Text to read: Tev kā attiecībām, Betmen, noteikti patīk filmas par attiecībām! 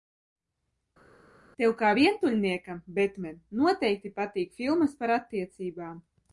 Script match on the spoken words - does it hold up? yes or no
no